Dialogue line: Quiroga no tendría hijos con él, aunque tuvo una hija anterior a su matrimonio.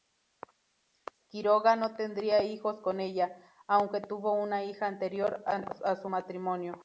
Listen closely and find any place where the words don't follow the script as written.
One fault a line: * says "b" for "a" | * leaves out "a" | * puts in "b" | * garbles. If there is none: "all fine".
* says "ella" for "él"